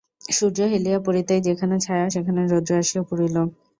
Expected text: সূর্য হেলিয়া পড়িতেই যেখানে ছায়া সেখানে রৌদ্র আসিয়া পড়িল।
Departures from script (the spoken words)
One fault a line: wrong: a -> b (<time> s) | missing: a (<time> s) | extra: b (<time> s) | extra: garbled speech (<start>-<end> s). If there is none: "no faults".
no faults